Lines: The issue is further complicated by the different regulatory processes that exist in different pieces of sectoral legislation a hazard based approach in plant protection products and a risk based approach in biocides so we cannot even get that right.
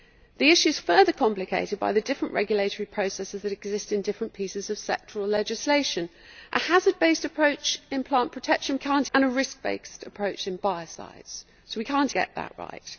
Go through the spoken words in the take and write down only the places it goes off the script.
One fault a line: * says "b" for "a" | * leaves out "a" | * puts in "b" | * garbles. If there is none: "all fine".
* says "cannot" for "products"
* leaves out "even"